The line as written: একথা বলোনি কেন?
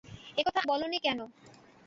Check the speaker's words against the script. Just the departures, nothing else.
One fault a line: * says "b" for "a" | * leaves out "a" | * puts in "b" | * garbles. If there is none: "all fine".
all fine